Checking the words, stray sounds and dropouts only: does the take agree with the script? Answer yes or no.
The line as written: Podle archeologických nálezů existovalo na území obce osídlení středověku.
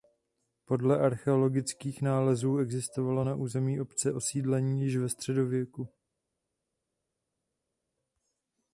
no